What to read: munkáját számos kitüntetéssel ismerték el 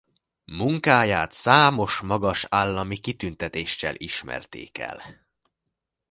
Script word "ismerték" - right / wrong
right